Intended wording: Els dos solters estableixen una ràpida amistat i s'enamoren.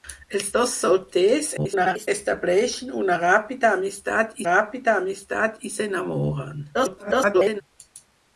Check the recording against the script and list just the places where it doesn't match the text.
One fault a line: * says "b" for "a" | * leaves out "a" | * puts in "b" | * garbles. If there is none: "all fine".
* garbles
* puts in "ràpida amistat"
* garbles